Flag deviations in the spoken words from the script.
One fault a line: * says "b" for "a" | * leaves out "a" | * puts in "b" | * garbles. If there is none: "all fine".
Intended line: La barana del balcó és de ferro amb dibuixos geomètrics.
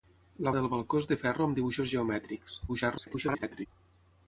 * leaves out "barana"
* garbles